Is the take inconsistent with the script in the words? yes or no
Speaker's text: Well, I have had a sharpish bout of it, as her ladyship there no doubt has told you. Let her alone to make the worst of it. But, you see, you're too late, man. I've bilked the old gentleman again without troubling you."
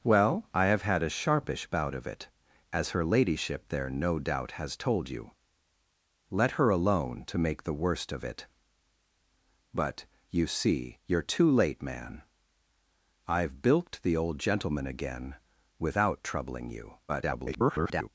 yes